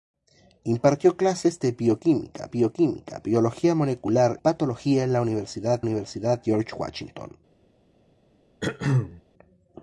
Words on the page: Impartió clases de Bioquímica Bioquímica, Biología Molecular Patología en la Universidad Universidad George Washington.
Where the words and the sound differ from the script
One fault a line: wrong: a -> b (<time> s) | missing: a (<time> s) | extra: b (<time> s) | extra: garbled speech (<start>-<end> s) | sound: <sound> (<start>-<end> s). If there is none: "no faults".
sound: throat clearing (8.6-9.2 s)